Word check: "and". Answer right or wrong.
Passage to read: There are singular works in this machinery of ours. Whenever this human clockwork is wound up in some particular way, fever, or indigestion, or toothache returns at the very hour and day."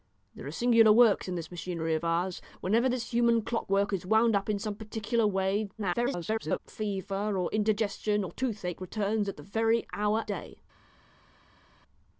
wrong